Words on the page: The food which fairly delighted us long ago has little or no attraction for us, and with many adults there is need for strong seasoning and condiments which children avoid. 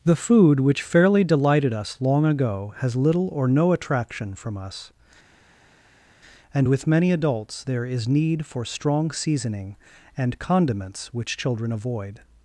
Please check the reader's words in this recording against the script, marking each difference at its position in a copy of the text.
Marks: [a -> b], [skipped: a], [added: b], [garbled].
The food which fairly delighted us long ago has little or no attraction [for -> from] us, and with many adults there is need for strong seasoning and condiments which children avoid.